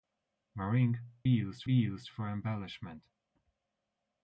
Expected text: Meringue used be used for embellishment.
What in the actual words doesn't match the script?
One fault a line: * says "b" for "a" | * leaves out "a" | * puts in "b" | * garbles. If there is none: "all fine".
all fine